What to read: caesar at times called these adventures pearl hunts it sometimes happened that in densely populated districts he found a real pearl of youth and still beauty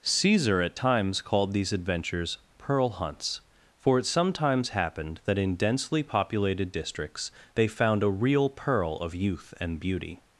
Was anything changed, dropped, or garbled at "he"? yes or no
yes